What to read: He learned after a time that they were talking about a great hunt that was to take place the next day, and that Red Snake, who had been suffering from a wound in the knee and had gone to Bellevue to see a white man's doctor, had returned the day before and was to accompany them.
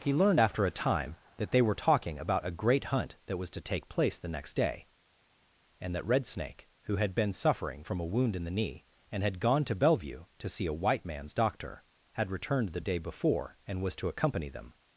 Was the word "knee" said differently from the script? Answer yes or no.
no